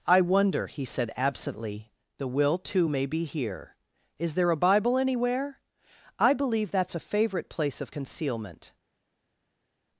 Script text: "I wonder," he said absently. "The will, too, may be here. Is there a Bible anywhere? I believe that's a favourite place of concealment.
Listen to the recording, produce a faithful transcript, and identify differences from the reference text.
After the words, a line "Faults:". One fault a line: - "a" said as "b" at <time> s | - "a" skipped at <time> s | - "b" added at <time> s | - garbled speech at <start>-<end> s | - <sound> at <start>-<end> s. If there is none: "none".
"I wonder," he said absently. "The will, too, may be here. Is there a Bible anywhere? I believe that's a favourite place of concealment.
Faults:
none